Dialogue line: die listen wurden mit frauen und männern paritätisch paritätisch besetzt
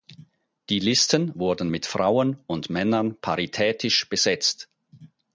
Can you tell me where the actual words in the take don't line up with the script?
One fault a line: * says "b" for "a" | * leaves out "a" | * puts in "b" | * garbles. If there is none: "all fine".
* leaves out "paritätisch"